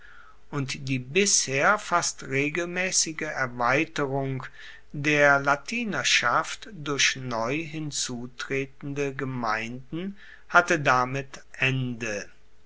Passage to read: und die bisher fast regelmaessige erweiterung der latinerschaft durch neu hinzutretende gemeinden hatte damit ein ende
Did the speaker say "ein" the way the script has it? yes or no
no